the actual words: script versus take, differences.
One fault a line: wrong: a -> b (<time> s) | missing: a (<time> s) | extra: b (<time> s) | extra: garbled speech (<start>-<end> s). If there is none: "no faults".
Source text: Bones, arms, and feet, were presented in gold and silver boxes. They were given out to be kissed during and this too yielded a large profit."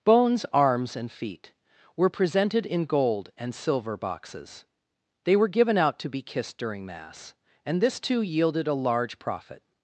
extra: mass (6.9 s)